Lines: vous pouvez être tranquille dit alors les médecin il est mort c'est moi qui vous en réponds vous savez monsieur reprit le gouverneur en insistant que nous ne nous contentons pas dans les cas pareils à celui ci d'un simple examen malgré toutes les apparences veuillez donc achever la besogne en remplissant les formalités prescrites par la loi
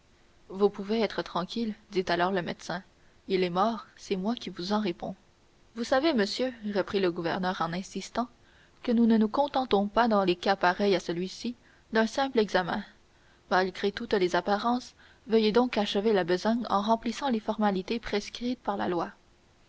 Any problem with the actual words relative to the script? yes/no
yes